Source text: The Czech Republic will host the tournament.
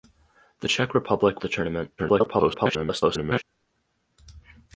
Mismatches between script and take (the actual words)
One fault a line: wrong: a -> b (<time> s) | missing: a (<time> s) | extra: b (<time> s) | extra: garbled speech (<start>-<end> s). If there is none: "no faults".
missing: will host (1.4 s)
extra: garbled speech (2.0-3.4 s)